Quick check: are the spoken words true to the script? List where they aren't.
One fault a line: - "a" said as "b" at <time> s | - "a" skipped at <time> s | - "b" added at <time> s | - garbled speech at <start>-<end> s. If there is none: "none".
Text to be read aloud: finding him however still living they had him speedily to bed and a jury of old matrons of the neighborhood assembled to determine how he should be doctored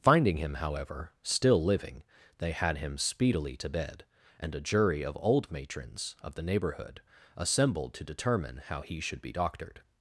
none